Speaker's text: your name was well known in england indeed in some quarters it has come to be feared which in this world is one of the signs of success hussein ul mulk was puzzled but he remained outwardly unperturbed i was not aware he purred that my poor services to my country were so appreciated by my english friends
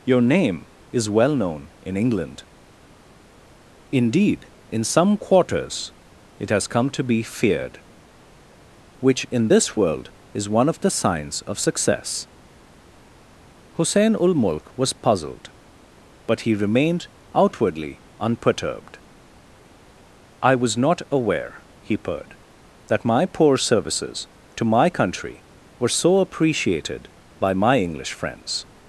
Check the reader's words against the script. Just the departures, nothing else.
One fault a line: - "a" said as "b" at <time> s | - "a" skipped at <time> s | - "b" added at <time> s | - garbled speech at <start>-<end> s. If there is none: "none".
- "was" said as "is" at 0.9 s